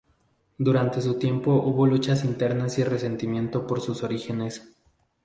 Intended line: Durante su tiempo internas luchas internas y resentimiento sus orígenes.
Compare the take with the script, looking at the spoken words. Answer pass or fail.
fail